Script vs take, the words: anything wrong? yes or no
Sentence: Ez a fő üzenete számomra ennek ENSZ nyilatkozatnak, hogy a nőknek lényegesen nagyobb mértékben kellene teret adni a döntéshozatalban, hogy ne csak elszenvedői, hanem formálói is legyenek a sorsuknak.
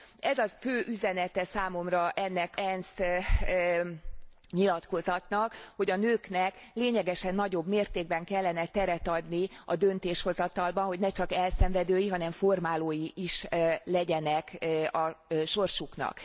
no